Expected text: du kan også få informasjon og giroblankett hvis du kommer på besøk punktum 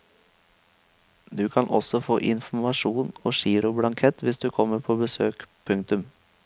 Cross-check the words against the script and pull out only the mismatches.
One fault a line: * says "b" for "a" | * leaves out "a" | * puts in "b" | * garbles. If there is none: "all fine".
all fine